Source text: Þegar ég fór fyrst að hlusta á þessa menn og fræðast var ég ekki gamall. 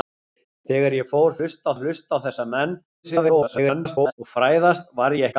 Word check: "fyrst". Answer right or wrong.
wrong